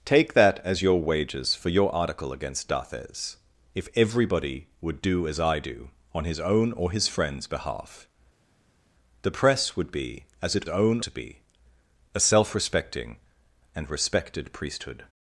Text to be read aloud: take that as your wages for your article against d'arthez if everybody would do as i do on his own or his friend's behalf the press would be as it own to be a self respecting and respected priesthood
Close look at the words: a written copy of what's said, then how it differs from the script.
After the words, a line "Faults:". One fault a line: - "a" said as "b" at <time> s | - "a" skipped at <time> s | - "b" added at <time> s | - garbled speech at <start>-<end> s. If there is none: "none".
take that as your wages for your article against d'arthez if everybody would do as i do on his own or his friend's behalf the press would be as it own to be a self respecting and respected priesthood
Faults:
none